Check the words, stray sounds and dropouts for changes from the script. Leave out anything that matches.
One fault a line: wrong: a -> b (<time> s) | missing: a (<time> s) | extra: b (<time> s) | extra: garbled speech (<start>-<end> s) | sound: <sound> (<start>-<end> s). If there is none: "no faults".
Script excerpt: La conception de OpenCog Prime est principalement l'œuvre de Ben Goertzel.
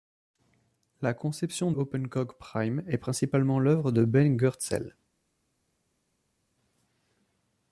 missing: de (1.7 s)